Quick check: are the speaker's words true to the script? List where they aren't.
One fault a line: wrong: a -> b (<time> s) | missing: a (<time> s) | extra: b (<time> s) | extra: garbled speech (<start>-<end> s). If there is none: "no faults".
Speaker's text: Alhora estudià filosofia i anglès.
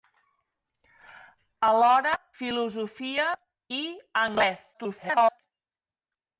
missing: estudià (2.1 s)
extra: garbled speech (4.7-5.4 s)